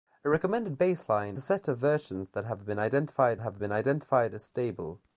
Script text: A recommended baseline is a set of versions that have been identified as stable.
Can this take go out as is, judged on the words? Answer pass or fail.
fail